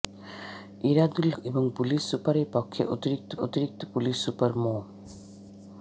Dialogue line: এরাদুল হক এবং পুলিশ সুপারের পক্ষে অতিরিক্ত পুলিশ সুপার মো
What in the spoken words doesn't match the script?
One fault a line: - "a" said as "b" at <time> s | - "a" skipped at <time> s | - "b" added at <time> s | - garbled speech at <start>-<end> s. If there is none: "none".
- "হক" skipped at 1.3 s
- "অতিরিক্ত" added at 3.4 s